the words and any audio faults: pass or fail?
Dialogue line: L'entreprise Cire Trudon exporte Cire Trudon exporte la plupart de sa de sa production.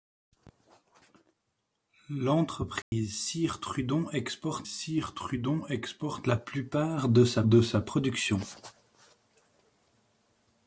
fail